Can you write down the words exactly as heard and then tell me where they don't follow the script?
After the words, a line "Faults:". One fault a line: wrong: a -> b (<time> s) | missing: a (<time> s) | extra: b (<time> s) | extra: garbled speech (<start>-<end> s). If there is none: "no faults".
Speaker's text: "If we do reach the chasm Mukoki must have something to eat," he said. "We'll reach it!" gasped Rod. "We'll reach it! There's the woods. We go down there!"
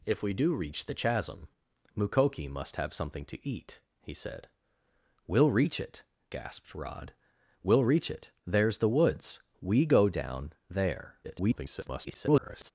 "If we do reach the chasm Mukoki must have something to eat," he said. "We'll reach it!" gasped Rod. "We'll reach it! There's the woods. We go down there!" [garbled]
Faults:
extra: garbled speech (11.2-12.7 s)